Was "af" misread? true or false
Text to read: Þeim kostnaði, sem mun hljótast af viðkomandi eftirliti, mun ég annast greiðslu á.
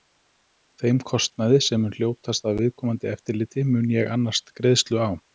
false